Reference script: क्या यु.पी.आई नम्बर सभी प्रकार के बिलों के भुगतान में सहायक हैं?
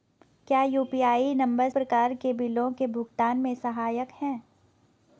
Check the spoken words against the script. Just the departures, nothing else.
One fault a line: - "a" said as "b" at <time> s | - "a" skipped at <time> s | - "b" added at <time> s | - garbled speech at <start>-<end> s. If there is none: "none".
- "सभी" skipped at 1.7 s